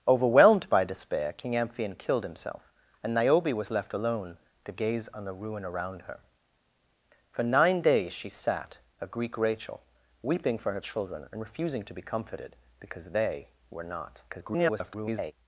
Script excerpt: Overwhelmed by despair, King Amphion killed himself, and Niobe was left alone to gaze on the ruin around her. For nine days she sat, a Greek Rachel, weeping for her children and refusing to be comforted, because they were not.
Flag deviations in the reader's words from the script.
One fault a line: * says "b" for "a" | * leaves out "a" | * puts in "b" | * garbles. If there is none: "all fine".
* garbles